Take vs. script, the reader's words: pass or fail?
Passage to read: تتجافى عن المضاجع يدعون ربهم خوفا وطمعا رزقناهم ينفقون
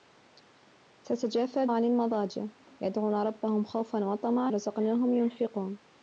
pass